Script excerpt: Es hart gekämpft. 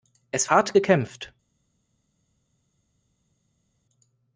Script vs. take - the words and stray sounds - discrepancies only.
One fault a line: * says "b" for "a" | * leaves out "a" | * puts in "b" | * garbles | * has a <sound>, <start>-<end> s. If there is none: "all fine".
all fine